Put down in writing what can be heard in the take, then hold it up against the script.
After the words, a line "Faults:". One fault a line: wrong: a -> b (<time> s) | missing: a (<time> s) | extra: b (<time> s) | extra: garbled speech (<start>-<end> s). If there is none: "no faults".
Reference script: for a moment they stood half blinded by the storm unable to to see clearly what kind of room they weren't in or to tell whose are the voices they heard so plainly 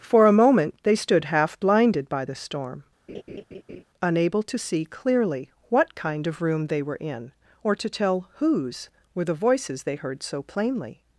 for a moment they stood half blinded by the storm unable to see clearly what kind of room they were in or to tell whose were the voices they heard so plainly
Faults:
missing: to (4.6 s)
wrong: weren't -> were (6.8 s)
wrong: are -> were (9.1 s)